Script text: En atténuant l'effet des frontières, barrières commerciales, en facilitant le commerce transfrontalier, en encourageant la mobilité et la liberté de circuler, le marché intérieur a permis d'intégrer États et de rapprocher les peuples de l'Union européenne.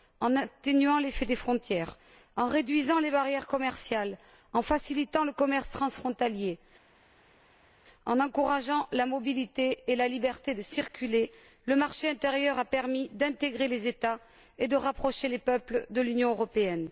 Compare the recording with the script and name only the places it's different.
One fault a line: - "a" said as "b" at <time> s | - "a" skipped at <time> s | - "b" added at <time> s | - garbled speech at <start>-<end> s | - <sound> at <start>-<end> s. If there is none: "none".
- "en réduisant les" added at 2.4 s
- "les" added at 13.7 s